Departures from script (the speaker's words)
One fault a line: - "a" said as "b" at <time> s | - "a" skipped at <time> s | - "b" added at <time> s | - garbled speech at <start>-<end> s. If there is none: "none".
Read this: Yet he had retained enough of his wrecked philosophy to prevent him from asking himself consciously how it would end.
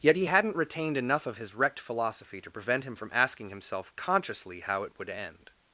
- "had" said as "hadn't" at 0.2 s